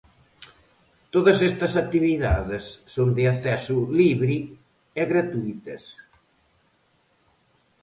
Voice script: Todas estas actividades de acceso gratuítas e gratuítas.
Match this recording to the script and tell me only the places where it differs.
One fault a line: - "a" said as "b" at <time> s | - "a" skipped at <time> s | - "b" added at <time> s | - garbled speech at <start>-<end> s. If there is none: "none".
- "son" added at 2.9 s
- "gratuítas" said as "libre" at 4.0 s